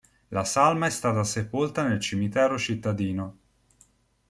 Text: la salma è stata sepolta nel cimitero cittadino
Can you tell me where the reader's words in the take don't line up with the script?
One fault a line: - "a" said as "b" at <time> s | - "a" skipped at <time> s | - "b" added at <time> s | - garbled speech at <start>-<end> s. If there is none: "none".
none